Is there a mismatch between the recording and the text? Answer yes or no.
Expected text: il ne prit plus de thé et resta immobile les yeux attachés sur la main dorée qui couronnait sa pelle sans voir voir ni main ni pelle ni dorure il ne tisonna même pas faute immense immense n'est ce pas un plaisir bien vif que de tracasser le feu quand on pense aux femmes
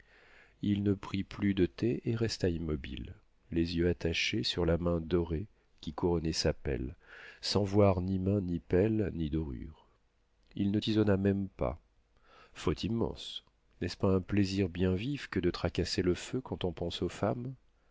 yes